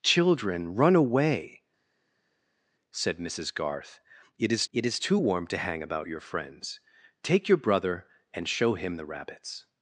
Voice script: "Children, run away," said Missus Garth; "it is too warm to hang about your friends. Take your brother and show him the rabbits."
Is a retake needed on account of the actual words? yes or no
yes